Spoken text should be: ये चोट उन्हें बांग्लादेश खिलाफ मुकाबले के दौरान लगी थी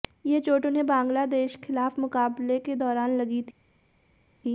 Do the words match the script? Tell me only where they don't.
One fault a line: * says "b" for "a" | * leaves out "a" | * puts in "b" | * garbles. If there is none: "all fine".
all fine